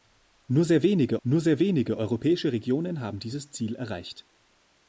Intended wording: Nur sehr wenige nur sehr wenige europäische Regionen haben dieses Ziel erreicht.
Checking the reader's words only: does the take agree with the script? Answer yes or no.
yes